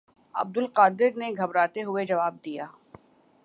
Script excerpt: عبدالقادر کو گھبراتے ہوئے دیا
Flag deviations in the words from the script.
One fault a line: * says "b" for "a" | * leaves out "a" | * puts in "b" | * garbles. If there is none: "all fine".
* says "نے" for "کو"
* puts in "جواب"